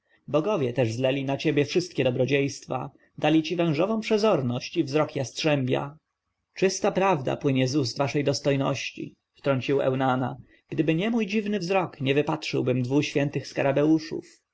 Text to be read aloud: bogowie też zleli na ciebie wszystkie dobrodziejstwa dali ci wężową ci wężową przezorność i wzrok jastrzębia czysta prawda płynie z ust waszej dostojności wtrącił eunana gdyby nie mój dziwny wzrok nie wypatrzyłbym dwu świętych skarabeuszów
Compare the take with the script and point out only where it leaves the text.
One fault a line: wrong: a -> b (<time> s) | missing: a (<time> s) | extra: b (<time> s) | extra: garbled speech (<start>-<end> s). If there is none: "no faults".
missing: ci wężową (4.0 s)